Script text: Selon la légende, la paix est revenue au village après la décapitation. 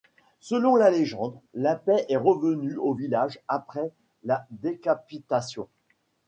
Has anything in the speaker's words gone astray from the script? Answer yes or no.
no